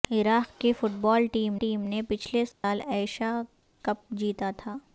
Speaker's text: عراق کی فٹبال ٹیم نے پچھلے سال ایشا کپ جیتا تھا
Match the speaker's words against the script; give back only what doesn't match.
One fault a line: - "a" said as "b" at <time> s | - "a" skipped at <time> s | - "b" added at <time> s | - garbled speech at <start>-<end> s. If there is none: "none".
- "ٹیم" added at 1.5 s